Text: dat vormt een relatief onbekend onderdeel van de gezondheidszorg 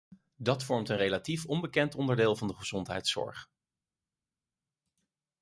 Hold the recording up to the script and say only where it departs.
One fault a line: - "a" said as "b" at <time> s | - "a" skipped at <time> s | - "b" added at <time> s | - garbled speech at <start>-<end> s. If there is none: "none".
none